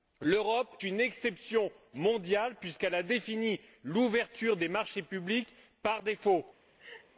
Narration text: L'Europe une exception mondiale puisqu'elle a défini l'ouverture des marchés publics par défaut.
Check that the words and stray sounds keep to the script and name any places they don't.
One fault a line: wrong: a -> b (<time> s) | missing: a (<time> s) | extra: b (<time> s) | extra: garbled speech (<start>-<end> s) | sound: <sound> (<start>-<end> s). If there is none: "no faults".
sound: laugh (6.8-7.1 s)